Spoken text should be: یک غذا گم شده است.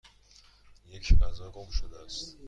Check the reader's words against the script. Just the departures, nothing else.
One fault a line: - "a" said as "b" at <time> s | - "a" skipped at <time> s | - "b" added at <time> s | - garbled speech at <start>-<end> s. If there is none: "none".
none